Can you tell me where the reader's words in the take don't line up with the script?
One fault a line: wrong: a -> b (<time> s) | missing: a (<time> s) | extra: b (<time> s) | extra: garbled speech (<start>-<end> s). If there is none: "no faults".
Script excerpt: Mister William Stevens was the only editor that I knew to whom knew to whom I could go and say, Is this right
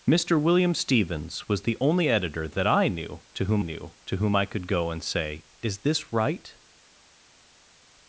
no faults